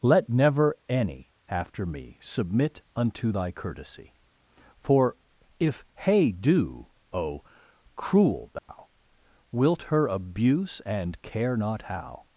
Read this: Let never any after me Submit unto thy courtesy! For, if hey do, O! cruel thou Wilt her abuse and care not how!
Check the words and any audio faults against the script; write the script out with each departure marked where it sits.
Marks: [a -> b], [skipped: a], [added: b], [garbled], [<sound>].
Let never any after me Submit unto thy courtesy! For, if hey do, O! cruel thou [dropout] Wilt her abuse and care not how!